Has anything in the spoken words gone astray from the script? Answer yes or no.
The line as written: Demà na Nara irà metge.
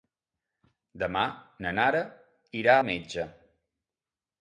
no